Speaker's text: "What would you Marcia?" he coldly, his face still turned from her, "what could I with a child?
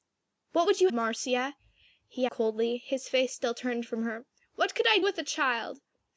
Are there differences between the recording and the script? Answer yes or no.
no